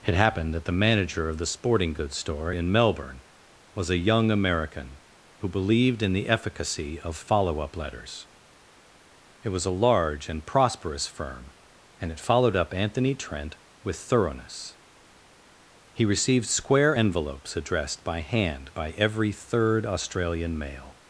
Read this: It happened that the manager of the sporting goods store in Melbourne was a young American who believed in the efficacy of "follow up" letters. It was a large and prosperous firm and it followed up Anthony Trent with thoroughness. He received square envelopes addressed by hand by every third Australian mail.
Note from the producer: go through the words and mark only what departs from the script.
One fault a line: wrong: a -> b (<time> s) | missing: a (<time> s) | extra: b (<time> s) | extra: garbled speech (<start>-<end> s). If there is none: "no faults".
no faults